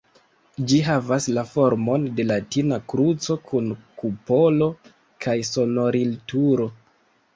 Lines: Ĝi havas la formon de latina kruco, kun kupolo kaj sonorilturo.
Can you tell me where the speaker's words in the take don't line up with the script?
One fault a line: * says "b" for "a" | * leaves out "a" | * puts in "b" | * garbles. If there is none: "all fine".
all fine